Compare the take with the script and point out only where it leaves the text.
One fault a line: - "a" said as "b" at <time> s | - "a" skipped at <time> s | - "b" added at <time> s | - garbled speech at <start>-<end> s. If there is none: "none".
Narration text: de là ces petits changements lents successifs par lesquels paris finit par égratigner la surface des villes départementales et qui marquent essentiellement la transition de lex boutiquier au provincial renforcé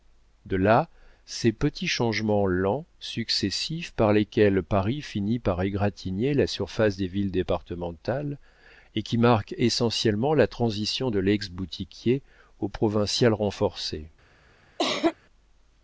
none